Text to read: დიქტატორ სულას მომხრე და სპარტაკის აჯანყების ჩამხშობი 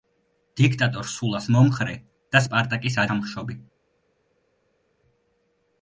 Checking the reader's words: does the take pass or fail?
fail